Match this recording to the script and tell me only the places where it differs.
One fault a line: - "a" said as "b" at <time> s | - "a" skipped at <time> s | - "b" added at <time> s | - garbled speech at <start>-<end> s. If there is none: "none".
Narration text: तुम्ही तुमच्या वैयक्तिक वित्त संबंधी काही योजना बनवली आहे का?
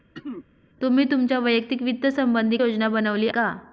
- "काही" skipped at 2.6 s
- "आहे" skipped at 3.3 s